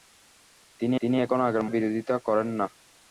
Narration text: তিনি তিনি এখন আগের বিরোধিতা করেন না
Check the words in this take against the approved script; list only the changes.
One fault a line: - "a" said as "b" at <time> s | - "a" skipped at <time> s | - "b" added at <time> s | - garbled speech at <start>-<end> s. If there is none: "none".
none